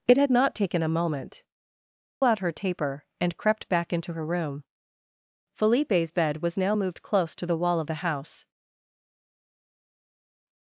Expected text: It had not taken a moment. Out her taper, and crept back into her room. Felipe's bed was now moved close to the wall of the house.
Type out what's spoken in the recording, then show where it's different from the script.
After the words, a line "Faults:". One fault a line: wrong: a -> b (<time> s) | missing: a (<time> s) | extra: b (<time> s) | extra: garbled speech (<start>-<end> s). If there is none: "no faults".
It had not taken a moment. Out her taper, and crept back into her room. Felipe's bed was now moved close to the wall of the house.
Faults:
no faults